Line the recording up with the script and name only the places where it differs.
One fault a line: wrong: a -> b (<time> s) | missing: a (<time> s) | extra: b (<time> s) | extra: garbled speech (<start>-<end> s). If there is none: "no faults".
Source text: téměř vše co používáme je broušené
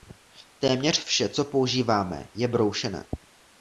no faults